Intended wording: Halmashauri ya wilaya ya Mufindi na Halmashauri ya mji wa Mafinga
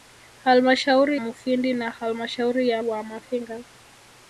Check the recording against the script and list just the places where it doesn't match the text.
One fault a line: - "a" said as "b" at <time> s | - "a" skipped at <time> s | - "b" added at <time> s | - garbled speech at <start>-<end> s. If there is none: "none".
- "ya wilaya ya" skipped at 1.2 s
- "mji" skipped at 2.8 s